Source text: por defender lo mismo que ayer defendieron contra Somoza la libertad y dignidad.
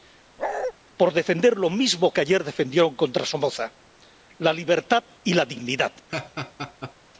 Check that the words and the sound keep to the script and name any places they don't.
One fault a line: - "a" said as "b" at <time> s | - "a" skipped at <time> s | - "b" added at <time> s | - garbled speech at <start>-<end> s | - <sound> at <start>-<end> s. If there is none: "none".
- bark at 0.4-0.7 s
- "la" added at 5.3 s
- laugh at 6.1-6.9 s